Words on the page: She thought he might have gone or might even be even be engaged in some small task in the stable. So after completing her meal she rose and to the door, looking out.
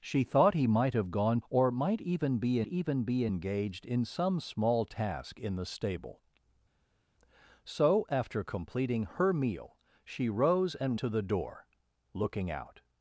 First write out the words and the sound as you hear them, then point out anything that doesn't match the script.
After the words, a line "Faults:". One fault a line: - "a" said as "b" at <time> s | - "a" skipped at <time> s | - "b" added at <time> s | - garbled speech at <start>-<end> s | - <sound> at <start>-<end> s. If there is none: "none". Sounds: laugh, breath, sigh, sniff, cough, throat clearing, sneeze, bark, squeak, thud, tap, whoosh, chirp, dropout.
She thought he might have gone or might even be even be engaged in some small task in the stable. So after completing her meal she rose and to the door, looking out.
Faults:
none